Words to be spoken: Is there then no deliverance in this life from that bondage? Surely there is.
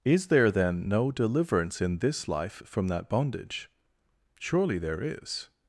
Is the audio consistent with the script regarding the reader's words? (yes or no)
yes